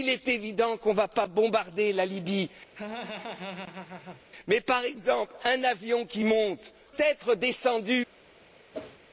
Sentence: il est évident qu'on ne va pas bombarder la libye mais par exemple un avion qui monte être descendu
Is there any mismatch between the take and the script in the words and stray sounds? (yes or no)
yes